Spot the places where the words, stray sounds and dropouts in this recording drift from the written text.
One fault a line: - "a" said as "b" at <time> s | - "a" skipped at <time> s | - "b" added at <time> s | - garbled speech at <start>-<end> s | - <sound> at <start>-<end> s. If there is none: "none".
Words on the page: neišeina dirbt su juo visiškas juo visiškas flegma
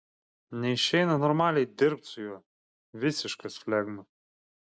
- "normaliai" added at 1.2 s
- "juo visiškas" skipped at 3.5 s